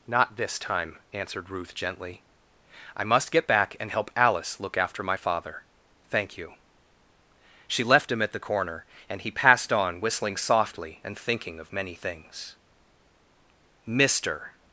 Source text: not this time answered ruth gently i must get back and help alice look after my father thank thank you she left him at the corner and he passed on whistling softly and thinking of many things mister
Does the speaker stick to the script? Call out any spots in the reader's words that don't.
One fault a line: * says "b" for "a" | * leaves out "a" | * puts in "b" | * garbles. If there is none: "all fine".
* leaves out "thank"